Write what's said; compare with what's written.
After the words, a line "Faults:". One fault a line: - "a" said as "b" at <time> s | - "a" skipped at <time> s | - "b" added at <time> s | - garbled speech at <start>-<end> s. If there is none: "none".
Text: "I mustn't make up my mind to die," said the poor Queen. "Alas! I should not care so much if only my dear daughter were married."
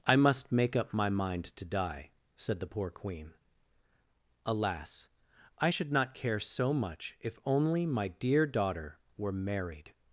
"I must make up my mind to die," said the poor Queen. "Alas! I should not care so much if only my dear daughter were married."
Faults:
- "mustn't" said as "must" at 0.1 s